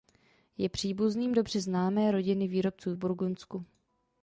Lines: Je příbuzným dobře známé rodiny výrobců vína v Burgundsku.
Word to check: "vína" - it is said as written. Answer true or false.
false